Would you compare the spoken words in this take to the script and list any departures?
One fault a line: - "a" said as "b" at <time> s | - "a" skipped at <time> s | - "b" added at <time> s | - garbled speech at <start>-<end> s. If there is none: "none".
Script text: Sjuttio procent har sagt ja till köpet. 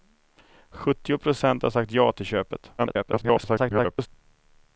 - garbled speech at 2.8-4.1 s